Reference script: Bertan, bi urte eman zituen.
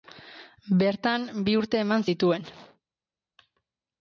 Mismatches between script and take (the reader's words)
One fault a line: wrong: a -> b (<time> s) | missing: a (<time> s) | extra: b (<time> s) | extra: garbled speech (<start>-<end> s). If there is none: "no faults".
no faults